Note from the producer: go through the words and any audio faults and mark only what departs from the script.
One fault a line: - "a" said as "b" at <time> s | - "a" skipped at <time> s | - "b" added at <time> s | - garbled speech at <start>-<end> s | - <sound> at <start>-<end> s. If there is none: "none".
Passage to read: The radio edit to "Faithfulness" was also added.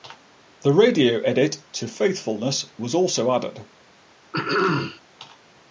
- throat clearing at 4.3-5.0 s